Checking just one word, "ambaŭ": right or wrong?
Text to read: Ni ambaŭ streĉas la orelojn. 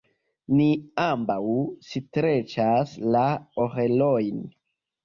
right